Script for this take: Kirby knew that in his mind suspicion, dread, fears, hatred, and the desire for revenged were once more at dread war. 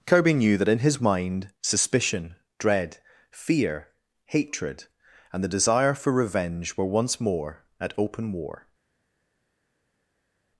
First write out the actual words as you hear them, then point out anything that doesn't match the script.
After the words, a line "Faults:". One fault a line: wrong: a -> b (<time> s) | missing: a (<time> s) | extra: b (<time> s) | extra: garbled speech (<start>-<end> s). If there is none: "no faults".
Kirby knew that in his mind suspicion, dread, fear, hatred, and the desire for revenge were once more at open war.
Faults:
wrong: fears -> fear (3.3 s)
wrong: revenged -> revenge (6.1 s)
wrong: dread -> open (8.0 s)